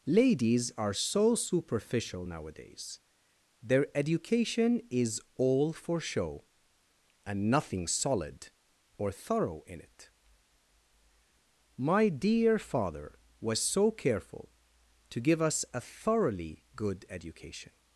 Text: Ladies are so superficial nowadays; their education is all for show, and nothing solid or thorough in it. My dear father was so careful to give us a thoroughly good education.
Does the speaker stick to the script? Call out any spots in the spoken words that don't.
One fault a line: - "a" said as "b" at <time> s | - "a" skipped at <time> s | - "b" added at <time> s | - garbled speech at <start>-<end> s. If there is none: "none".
none